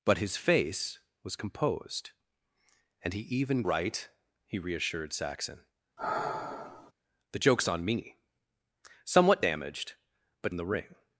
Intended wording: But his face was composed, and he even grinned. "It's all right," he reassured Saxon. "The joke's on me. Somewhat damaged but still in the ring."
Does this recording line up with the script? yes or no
no